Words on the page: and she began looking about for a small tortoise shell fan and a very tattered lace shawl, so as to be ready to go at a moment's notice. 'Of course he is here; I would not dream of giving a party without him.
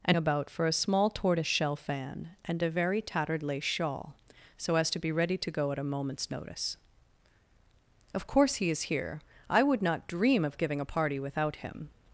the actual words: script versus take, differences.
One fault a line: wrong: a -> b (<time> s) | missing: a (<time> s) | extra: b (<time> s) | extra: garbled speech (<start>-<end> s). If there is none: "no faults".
missing: she began looking (0.2 s)